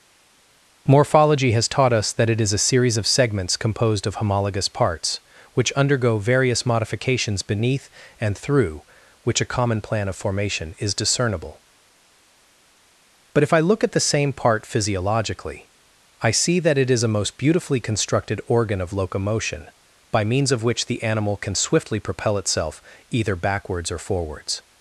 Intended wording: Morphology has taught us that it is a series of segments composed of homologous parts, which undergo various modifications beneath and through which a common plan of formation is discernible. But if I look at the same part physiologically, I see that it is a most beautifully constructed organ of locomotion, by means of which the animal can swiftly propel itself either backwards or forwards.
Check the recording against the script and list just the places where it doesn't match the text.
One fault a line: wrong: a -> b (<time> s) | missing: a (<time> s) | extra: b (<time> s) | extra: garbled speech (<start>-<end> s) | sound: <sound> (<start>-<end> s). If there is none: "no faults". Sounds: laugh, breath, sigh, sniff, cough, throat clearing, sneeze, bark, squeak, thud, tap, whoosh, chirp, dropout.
no faults